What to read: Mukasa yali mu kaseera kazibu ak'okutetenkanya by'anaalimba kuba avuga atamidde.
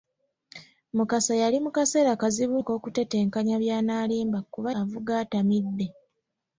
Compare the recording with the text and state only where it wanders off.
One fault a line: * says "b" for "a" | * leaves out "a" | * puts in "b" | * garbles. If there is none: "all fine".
all fine